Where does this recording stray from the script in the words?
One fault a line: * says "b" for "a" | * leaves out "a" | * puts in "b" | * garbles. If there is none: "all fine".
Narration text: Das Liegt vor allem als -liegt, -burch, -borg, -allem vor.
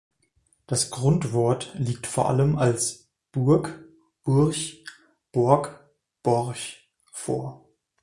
* puts in "Grundwort"
* says "burg" for "liegt"
* says "borch" for "allem"